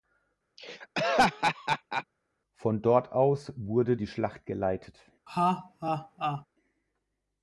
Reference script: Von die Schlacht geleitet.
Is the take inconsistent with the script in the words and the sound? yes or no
yes